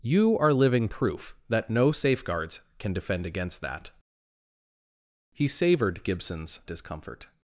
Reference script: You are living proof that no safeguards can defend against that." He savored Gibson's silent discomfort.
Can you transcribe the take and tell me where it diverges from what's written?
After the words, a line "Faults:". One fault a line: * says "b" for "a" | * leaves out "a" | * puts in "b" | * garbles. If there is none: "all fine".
You are living proof that no safeguards can defend against that." He savored Gibson's discomfort.
Faults:
* leaves out "silent"